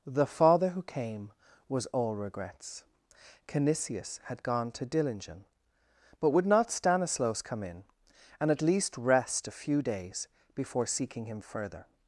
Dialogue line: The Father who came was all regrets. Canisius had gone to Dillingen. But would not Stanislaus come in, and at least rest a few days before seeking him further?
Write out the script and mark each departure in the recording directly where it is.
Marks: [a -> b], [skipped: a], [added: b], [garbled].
The Father who came was all regrets. Canisius had gone to Dillingen. But would not Stanislaus come in, and at least rest a few days before seeking him further?